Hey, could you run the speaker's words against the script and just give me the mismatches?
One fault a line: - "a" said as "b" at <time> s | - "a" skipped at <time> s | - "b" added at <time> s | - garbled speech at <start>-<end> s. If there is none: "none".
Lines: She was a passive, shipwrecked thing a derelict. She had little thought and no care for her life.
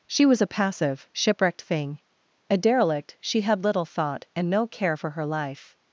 none